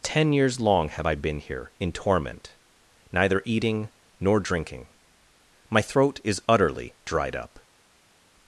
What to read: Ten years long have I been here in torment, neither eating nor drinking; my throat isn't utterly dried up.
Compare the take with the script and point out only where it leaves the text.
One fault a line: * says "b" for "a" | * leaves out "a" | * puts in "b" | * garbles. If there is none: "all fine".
* says "is" for "isn't"